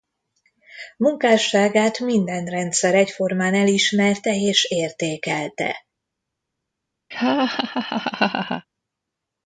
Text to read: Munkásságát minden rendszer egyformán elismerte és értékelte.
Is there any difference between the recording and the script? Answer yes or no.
no